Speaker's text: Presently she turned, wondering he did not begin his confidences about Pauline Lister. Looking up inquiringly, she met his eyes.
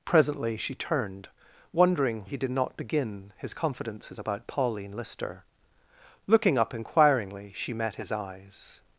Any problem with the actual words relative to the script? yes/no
no